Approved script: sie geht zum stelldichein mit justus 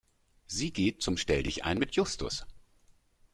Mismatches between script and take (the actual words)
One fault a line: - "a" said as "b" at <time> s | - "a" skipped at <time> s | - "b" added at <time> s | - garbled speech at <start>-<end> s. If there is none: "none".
none